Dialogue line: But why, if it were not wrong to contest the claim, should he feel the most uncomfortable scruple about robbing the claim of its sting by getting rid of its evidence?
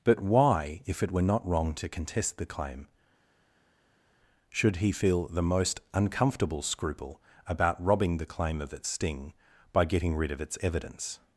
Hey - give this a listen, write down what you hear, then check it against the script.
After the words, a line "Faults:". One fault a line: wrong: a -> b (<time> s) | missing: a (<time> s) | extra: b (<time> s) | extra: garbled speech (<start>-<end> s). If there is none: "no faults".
But why, if it were not wrong to contest the claim, should he feel the most uncomfortable scruple about robbing the claim of its sting by getting rid of its evidence?
Faults:
no faults